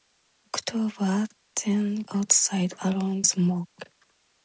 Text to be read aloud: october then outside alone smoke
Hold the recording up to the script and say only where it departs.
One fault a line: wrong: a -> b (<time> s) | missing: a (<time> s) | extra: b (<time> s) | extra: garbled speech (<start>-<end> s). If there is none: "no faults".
no faults